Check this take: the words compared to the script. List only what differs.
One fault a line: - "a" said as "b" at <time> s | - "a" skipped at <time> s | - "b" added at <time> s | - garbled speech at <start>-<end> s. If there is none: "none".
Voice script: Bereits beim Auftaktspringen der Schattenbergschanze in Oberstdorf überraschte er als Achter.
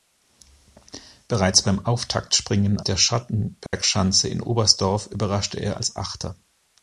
none